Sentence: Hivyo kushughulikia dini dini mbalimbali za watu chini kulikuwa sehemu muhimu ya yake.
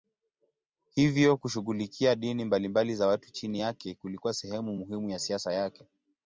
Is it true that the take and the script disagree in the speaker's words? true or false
true